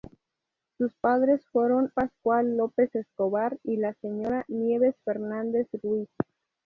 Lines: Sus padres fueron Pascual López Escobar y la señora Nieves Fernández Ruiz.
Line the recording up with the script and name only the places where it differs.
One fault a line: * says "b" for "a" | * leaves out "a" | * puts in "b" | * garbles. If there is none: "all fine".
all fine